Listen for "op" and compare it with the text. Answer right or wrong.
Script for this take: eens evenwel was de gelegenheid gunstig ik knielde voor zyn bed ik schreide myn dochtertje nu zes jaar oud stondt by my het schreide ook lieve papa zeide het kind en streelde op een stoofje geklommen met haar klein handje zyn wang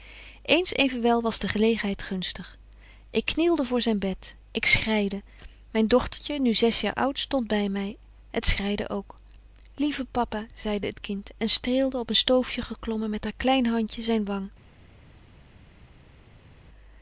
right